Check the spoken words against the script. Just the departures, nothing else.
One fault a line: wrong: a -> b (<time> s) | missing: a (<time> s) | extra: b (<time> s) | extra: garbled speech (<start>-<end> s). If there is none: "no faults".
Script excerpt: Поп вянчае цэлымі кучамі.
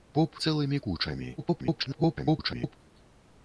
missing: вянчае (0.4 s)
extra: garbled speech (1.4-2.8 s)